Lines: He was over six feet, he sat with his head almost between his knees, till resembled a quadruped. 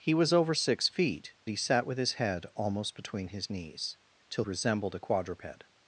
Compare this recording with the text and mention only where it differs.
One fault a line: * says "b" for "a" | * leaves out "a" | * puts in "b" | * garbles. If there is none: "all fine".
all fine